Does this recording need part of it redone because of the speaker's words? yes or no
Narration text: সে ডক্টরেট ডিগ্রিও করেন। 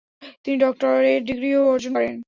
yes